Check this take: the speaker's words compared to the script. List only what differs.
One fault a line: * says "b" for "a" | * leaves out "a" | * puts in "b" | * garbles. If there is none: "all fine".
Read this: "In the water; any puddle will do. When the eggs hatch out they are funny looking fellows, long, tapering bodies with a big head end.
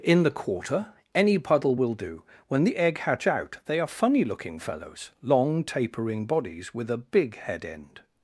* says "quarter" for "water"
* says "egg" for "eggs"